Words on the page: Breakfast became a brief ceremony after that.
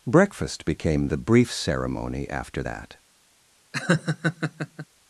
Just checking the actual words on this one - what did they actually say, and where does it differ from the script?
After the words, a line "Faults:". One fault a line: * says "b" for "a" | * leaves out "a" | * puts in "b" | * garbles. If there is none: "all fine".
Breakfast became the brief ceremony after that.
Faults:
* says "the" for "a"